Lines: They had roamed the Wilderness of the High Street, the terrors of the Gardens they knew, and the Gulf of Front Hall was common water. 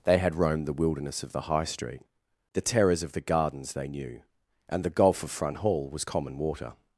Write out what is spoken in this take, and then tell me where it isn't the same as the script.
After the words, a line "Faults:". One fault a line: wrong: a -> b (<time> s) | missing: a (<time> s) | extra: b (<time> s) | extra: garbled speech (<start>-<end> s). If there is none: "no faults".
They had roamed the Wilderness of the High Street, the terrors of the Gardens they knew, and the Gulf of Front Hall was common water.
Faults:
no faults